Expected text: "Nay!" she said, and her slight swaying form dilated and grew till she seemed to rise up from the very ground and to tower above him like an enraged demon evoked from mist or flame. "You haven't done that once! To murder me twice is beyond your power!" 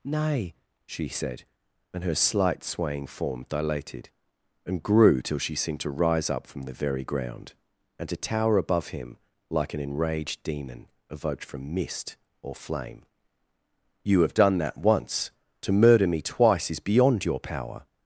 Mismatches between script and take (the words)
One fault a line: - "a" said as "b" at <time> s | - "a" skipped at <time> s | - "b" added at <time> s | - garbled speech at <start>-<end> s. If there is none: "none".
- "haven't" said as "have" at 14.2 s